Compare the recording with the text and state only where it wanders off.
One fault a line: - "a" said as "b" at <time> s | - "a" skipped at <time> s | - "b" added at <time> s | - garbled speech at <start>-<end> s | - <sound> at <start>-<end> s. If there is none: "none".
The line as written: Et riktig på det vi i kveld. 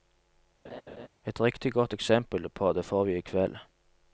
- laugh at 0.6-1.1 s
- "godt eksempel" added at 1.7 s
- "får" added at 2.8 s